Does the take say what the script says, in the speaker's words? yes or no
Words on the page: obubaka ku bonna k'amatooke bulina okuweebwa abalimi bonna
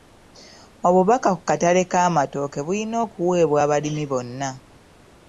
no